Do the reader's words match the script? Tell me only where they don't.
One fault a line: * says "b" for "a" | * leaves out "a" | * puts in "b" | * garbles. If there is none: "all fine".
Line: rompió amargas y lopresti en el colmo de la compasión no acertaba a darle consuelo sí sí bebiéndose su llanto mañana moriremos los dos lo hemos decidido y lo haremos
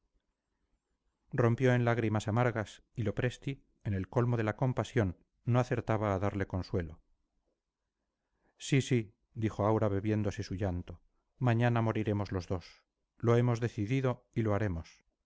* puts in "en lágrimas"
* puts in "dijo aura"